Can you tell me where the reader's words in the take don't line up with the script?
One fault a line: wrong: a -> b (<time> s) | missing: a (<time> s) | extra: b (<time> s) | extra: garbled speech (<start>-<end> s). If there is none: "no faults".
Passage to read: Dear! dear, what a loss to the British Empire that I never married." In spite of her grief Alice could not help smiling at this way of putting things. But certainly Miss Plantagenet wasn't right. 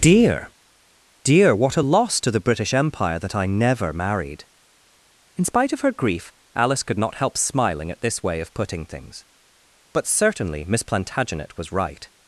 wrong: wasn't -> was (11.6 s)